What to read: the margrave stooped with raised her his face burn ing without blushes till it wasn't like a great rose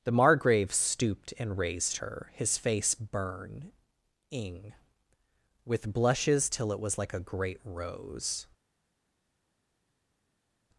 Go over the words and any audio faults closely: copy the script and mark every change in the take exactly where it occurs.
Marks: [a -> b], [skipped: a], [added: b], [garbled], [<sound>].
the margrave stooped [with -> and] raised her his face burn ing [without -> with] blushes till it [wasn't -> was] like a great rose